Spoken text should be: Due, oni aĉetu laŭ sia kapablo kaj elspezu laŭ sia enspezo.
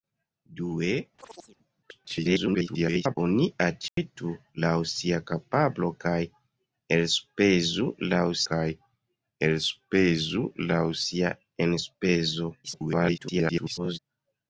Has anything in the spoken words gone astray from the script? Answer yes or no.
yes